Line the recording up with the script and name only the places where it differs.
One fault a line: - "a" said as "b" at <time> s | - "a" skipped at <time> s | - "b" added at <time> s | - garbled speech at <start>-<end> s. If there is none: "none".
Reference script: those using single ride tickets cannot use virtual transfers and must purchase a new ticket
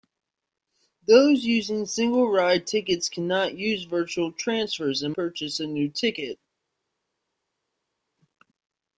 - "must" skipped at 5.1 s